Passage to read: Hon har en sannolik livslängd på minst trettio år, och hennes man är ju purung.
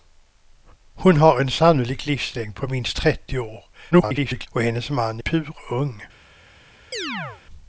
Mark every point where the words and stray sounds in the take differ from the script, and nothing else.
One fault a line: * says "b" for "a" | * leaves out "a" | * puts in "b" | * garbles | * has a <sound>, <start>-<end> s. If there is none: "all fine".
* garbles
* leaves out "ju"
* has a chirp, 6.9-7.4 s